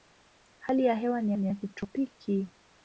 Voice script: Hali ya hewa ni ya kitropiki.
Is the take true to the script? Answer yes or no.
no